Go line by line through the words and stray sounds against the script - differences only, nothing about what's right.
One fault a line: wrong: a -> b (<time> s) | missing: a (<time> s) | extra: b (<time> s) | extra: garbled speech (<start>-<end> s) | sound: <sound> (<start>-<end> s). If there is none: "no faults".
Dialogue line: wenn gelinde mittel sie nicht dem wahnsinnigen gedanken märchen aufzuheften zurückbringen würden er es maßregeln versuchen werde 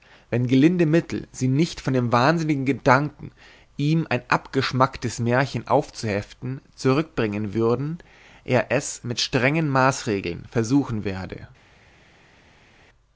extra: von (1.8 s)
extra: ihm ein abgeschmacktes (3.8 s)
extra: mit strengen (9.0 s)